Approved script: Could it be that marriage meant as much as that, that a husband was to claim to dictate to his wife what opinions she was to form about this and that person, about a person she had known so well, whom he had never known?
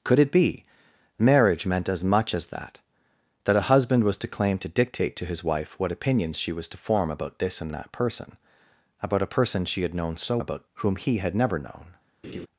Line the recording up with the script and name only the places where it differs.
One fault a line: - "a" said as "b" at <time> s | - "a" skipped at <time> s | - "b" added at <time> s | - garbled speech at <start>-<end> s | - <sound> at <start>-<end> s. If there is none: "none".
- "that" skipped at 0.6 s
- "well" said as "about" at 10.4 s
- laugh at 12.2-12.5 s